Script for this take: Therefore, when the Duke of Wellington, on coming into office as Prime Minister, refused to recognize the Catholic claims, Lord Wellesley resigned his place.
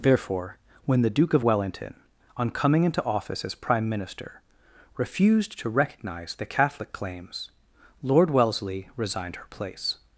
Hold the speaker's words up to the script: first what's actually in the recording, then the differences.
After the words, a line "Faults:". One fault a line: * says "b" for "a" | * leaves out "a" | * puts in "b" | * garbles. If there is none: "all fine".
Therefore, when the Duke of Wellington, on coming into office as Prime Minister, refused to recognize the Catholic claims, Lord Wellesley resigned her place.
Faults:
* says "her" for "his"